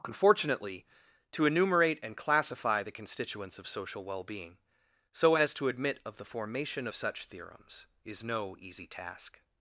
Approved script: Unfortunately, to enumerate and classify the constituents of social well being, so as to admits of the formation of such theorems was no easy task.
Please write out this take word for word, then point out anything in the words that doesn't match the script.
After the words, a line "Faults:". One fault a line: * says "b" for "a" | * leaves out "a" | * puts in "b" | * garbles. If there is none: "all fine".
Unfortunately, to enumerate and classify the constituents of social well being, so as to admit of the formation of such theorems is no easy task.
Faults:
* says "admit" for "admits"
* says "is" for "was"